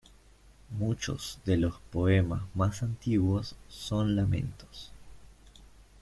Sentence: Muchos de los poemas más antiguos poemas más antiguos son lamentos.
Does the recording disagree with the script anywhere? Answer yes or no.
yes